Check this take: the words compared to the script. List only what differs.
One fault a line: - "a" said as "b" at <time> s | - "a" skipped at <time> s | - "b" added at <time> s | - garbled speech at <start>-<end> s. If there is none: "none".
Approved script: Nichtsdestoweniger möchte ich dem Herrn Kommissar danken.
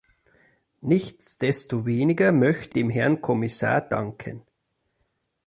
- "ich" skipped at 2.8 s